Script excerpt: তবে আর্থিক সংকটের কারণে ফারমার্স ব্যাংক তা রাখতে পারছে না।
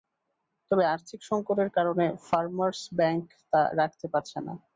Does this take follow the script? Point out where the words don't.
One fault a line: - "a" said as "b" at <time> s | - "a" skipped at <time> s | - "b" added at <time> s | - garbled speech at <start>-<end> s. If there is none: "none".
none